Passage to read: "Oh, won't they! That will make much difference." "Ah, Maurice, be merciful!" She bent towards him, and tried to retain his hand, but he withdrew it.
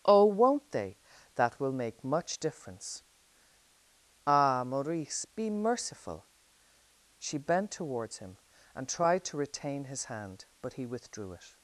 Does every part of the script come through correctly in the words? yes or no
yes